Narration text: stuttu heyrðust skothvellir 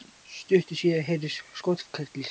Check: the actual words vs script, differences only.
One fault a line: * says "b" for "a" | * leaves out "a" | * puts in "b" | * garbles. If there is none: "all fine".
* puts in "síðar"